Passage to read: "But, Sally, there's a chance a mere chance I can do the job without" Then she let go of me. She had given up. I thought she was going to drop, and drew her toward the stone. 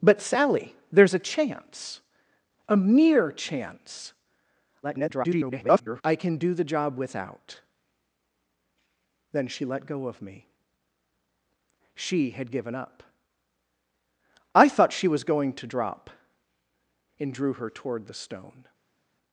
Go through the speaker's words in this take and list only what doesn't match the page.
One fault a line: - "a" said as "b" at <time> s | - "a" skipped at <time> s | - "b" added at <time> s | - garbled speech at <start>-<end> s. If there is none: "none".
- garbled speech at 4.8-6.0 s